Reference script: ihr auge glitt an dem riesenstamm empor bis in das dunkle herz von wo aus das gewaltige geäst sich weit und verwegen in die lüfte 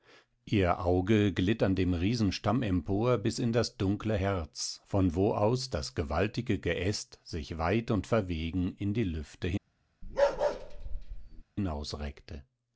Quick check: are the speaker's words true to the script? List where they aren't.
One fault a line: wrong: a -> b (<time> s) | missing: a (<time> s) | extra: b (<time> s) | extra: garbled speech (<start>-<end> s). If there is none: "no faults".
no faults